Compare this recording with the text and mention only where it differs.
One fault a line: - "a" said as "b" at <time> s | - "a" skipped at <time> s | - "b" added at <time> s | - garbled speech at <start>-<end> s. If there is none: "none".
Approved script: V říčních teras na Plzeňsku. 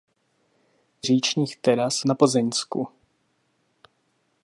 none